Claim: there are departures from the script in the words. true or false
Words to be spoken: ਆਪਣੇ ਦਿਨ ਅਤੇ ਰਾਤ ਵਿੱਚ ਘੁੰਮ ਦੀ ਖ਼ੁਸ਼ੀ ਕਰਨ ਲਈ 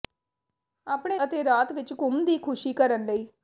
true